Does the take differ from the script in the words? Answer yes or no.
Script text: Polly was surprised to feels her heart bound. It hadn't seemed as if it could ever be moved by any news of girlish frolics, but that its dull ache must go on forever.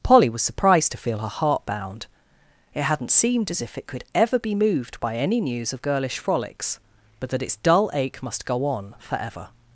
yes